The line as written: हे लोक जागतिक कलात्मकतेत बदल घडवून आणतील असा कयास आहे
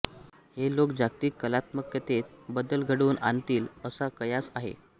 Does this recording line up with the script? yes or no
yes